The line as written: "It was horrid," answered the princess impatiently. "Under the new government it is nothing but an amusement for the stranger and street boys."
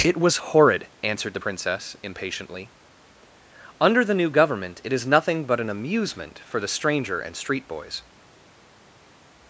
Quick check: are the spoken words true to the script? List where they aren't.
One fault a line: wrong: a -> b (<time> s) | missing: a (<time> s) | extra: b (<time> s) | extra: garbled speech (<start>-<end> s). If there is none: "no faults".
no faults